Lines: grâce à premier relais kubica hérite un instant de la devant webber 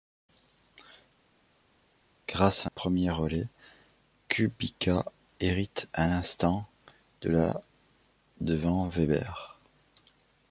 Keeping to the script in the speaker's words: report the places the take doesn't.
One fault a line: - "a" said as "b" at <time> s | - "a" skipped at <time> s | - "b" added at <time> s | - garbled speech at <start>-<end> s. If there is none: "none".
none